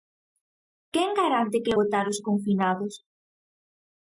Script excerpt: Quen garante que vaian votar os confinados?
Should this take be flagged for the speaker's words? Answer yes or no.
yes